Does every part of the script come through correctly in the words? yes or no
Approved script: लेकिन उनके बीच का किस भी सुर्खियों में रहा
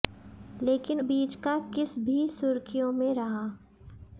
no